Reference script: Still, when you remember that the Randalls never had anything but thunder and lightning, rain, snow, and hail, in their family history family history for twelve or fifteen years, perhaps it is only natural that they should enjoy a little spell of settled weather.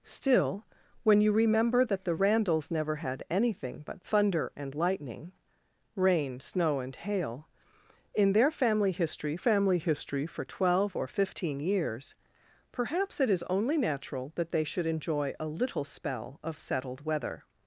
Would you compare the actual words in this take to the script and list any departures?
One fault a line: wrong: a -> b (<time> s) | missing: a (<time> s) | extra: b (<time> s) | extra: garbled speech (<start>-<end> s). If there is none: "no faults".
no faults